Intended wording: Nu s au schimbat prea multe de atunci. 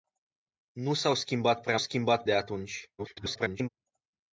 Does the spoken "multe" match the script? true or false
false